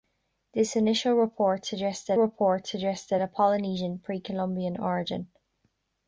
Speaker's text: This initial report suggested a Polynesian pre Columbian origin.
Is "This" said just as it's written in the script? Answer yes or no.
yes